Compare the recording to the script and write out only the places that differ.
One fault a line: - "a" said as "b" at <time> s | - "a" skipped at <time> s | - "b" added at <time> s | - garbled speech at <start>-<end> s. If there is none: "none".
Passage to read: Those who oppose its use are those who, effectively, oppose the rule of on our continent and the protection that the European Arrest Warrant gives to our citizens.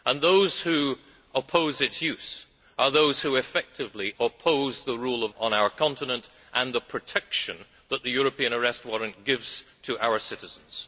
none